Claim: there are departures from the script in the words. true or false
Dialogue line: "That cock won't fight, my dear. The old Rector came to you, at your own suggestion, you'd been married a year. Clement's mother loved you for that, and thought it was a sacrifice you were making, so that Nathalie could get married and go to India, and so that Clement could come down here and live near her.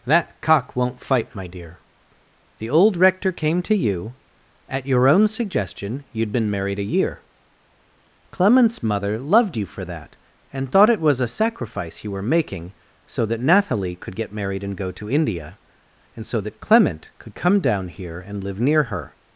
false